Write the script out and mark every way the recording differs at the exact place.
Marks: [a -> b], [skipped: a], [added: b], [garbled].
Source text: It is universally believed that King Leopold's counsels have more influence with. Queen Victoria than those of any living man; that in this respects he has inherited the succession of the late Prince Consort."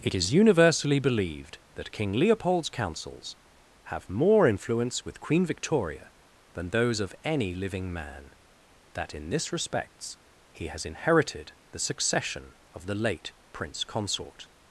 It is universally believed that King Leopold's counsels have more influence with. Queen Victoria than those of any living man; that in this respects he has inherited the succession of the late Prince Consort."